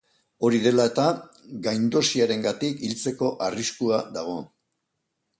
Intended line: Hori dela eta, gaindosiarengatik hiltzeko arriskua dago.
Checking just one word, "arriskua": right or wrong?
right